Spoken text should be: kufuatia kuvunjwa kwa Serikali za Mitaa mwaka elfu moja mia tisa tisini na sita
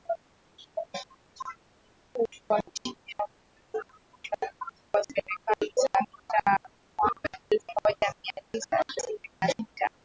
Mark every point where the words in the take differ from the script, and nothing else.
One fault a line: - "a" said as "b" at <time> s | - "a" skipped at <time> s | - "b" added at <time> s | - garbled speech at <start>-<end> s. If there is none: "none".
none